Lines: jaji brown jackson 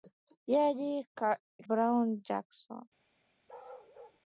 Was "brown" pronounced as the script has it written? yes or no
yes